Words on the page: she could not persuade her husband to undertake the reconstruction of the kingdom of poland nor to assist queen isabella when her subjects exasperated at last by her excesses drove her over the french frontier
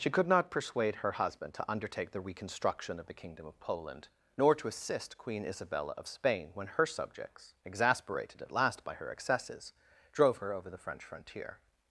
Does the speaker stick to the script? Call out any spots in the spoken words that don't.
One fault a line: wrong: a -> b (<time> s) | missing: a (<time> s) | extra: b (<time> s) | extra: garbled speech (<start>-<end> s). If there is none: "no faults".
extra: of spain (6.0 s)